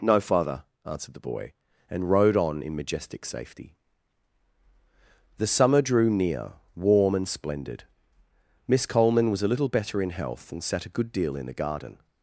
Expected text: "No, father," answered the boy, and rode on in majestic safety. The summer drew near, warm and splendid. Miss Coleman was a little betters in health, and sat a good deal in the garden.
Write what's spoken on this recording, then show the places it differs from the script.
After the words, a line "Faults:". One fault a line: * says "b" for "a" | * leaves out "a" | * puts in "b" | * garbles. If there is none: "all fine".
"No, father," answered the boy, and rode on in majestic safety. The summer drew near, warm and splendid. Miss Coleman was a little better in health, and sat a good deal in the garden.
Faults:
* says "better" for "betters"